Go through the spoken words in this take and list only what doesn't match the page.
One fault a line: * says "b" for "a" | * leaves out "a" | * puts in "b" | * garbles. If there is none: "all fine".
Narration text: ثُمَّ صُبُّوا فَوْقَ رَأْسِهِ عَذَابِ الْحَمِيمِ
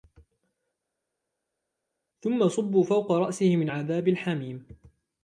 * puts in "مِنْ"